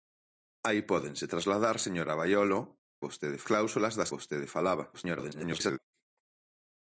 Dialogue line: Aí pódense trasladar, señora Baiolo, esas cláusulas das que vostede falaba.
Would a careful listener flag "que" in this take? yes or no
yes